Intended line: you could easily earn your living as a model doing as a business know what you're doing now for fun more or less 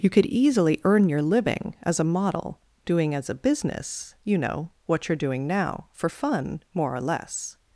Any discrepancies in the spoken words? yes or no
yes